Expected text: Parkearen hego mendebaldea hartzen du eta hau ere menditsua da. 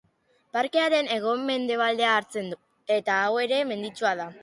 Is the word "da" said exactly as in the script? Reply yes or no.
yes